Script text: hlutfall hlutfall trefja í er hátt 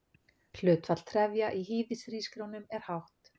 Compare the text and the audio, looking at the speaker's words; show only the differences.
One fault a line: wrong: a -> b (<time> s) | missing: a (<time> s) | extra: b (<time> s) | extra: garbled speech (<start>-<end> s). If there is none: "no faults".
missing: hlutfall (1.0 s)
extra: hýðishrísgrjónum (1.7 s)